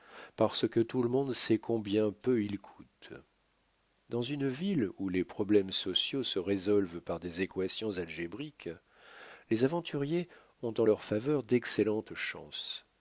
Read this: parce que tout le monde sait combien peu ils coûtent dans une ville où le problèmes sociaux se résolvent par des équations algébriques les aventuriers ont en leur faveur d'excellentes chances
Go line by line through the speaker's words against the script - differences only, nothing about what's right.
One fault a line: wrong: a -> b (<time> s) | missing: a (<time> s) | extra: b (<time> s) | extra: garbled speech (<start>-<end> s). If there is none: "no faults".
wrong: le -> les (5.1 s)